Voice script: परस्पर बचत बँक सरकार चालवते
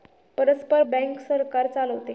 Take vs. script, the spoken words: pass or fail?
fail